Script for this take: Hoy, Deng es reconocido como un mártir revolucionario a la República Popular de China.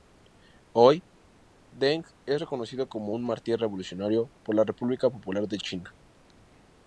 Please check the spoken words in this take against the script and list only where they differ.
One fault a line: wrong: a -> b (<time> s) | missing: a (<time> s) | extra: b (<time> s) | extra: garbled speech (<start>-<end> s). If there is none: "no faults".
wrong: a -> por (4.4 s)